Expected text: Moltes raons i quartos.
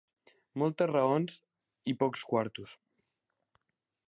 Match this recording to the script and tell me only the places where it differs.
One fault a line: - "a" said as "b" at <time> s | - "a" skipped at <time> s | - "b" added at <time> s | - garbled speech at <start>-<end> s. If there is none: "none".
- "pocs" added at 2.1 s